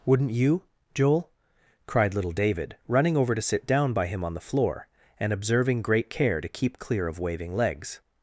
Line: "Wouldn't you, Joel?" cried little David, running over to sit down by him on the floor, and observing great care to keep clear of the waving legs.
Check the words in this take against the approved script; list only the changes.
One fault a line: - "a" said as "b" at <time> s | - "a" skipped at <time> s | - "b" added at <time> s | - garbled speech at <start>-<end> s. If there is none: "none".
- "the" skipped at 7.2 s